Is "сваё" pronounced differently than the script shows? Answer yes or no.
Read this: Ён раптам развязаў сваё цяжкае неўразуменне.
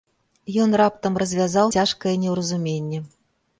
yes